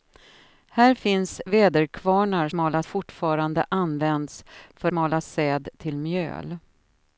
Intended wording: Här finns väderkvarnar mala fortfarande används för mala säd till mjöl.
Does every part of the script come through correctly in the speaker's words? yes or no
yes